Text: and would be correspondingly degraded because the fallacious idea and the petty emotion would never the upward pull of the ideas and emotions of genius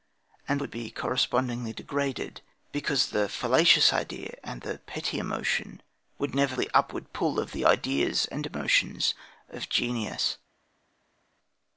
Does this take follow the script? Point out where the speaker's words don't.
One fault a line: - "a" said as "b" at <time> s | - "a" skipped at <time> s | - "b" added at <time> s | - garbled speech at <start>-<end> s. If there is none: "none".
none